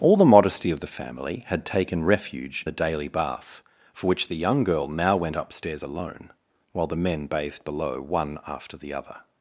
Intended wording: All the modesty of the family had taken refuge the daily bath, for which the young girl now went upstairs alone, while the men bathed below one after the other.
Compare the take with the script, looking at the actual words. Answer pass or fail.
pass